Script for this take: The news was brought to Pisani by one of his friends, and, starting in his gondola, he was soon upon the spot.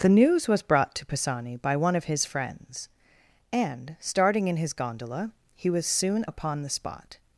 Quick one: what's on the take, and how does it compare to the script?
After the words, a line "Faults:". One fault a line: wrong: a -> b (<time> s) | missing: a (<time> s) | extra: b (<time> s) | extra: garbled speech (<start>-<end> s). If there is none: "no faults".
The news was brought to Pisani by one of his friends, and, starting in his gondola, he was soon upon the spot.
Faults:
no faults